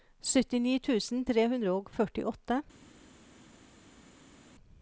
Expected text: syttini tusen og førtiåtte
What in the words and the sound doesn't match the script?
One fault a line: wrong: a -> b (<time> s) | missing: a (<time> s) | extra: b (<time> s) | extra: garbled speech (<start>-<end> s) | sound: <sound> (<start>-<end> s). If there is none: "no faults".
extra: tre hundre (1.3 s)